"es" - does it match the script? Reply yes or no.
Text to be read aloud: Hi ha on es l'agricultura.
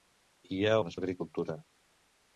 yes